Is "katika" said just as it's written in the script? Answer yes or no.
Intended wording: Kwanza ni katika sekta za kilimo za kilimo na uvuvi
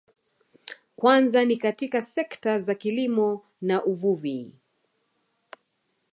yes